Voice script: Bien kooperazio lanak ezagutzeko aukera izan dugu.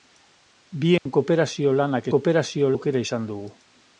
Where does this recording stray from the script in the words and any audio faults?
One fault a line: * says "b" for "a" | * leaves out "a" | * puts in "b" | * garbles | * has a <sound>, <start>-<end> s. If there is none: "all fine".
* has a dropout, 1.0-1.1 s
* says "kooperazio" for "ezagutzeko"